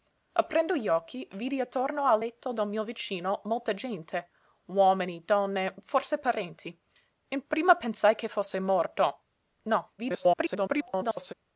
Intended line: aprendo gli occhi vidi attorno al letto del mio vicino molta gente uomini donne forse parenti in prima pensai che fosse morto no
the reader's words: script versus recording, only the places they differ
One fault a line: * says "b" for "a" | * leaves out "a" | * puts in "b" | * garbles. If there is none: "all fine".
* garbles